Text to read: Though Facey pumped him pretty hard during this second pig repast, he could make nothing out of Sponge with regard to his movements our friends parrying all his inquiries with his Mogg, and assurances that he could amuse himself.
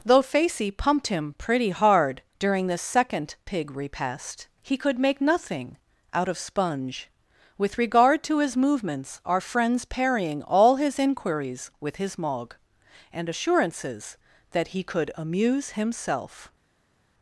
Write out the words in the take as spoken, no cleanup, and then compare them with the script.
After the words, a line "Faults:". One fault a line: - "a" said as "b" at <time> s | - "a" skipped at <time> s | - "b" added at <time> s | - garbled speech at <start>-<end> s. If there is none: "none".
Though Facey pumped him pretty hard during this second pig repast, he could make nothing out of Sponge with regard to his movements our friends parrying all his inquiries with his Mogg, and assurances that he could amuse himself.
Faults:
none